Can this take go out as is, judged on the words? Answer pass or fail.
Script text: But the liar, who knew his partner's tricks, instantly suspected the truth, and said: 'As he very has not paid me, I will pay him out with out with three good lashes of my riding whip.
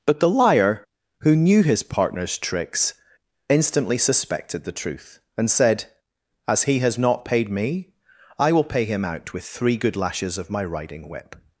fail